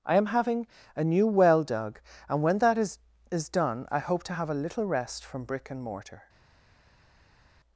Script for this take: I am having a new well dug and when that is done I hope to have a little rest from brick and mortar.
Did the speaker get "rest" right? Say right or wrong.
right